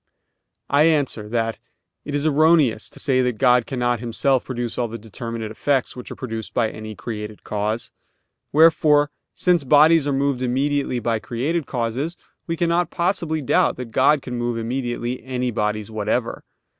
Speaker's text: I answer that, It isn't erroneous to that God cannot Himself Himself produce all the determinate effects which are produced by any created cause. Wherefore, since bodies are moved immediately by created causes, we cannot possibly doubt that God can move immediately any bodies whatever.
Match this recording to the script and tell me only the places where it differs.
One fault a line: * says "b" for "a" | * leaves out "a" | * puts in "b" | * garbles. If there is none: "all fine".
* says "is" for "isn't"
* puts in "say"
* leaves out "Himself"